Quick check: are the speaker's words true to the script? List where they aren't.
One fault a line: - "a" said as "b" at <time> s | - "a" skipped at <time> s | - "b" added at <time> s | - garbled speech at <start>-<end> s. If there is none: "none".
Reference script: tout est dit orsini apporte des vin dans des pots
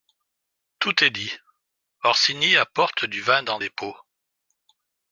- "des" said as "du" at 3.0 s